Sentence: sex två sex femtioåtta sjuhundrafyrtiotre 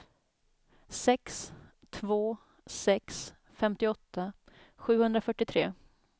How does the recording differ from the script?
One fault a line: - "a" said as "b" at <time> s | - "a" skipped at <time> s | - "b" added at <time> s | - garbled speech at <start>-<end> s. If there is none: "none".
none